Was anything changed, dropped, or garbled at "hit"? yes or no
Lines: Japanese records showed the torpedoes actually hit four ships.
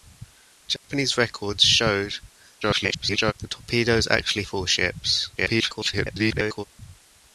yes